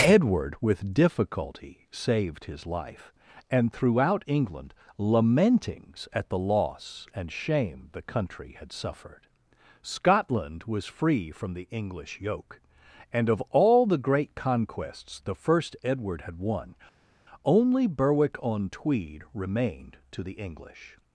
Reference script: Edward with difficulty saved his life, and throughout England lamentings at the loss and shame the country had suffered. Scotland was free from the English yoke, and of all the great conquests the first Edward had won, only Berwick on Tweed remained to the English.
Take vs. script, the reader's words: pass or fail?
pass